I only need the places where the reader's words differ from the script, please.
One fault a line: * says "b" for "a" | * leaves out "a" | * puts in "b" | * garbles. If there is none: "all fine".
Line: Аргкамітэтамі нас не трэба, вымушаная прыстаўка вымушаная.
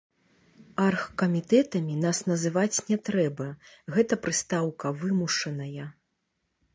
* puts in "называць"
* says "гэта" for "вымушаная"